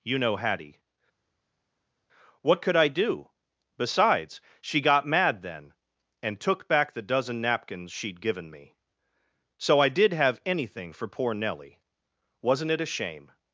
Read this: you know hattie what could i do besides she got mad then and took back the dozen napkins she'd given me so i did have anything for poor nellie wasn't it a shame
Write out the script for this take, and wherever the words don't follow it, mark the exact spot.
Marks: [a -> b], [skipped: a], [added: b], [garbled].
you know hattie what could i do besides she got mad then and took back the dozen napkins she'd given me so i did have anything for poor nellie wasn't it a shame